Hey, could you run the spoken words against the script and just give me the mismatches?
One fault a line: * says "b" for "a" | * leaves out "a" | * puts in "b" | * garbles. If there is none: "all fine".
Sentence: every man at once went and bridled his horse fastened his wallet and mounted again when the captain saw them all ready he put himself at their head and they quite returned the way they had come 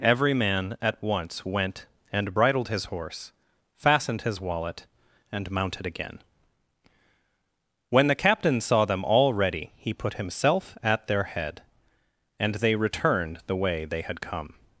* leaves out "quite"